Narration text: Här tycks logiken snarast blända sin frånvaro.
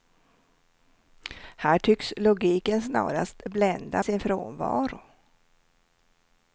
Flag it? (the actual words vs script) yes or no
no